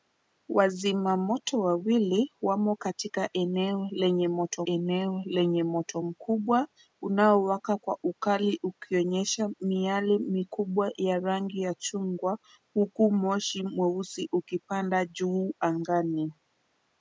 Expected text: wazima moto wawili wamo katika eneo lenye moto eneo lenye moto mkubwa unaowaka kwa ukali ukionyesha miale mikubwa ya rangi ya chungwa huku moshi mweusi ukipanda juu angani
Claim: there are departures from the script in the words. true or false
false